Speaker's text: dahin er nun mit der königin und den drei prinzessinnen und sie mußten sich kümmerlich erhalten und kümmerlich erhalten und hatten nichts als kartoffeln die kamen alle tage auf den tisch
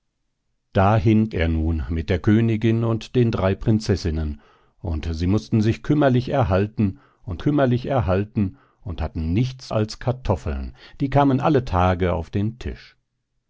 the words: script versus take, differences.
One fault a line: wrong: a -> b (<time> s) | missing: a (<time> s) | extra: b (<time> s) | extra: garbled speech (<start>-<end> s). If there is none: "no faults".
no faults